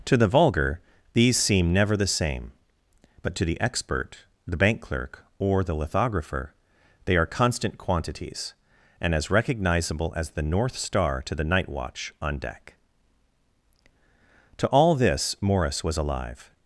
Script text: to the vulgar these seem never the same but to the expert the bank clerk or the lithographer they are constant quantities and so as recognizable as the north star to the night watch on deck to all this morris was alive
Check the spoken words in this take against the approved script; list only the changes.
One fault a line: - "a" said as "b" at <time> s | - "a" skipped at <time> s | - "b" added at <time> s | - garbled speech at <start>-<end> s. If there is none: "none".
- "so" skipped at 9.1 s